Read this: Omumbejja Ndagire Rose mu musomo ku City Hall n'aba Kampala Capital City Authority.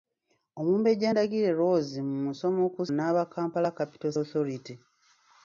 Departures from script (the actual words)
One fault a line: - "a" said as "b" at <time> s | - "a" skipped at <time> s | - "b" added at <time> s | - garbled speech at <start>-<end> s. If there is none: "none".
- "City Hall" skipped at 2.8 s
- "City" skipped at 4.1 s